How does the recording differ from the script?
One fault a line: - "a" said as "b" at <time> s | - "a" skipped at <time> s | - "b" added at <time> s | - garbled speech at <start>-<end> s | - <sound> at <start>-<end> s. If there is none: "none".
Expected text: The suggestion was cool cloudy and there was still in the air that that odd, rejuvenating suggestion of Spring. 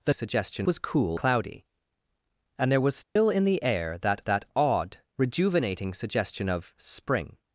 - dropout at 3.0-3.2 s